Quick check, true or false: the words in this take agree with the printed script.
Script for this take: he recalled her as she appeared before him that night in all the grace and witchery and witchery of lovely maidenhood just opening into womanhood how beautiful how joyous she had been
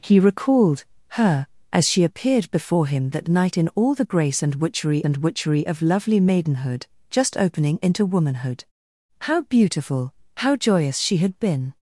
true